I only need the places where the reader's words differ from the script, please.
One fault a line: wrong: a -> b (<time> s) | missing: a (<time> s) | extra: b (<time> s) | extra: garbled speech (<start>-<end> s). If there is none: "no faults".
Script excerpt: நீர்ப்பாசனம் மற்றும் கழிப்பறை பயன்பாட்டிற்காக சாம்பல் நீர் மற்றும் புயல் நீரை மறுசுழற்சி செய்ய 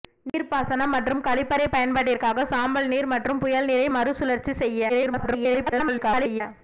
extra: garbled speech (4.9-6.4 s)